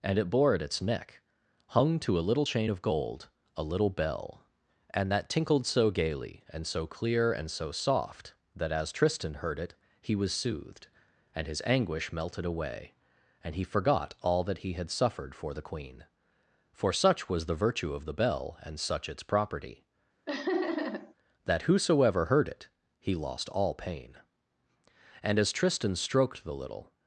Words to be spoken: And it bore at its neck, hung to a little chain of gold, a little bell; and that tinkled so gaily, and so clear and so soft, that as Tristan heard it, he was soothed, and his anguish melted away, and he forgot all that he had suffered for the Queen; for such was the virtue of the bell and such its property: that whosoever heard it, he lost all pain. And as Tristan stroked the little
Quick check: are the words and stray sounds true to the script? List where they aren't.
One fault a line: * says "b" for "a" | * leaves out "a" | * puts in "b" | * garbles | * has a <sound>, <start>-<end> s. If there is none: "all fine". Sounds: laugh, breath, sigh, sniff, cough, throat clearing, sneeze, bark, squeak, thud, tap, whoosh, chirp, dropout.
* has a laugh, 20.3-21.1 s